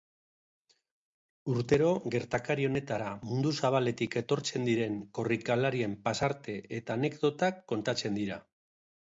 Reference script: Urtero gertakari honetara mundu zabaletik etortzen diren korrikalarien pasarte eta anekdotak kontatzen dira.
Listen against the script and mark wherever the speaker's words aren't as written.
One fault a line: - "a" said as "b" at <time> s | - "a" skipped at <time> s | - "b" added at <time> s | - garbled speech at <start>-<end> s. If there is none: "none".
none